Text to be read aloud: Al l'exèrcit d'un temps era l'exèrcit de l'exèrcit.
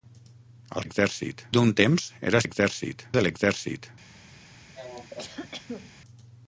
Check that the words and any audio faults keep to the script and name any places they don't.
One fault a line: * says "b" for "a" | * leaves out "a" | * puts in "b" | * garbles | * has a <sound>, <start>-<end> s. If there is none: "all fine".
* has a cough, 4.8-5.9 s